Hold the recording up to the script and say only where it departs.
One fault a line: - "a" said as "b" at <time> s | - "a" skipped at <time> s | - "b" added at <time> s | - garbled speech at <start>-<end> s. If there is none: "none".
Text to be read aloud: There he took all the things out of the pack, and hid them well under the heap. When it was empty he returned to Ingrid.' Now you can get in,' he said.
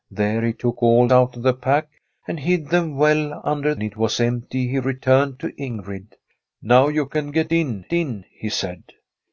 - "the things" skipped at 1.1 s
- "the heap When" skipped at 3.8 s
- "in" added at 7.9 s